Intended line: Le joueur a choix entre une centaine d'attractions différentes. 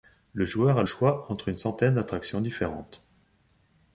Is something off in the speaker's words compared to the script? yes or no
no